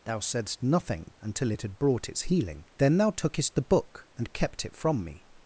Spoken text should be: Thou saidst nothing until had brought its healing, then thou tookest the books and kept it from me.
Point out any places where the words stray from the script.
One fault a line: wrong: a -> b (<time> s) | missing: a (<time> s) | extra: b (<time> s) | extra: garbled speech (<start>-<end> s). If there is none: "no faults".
extra: it (1.5 s)
wrong: books -> book (3.6 s)